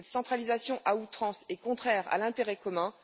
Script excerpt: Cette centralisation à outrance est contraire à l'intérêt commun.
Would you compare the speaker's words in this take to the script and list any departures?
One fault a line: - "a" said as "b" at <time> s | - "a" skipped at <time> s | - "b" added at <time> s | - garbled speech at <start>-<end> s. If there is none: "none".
none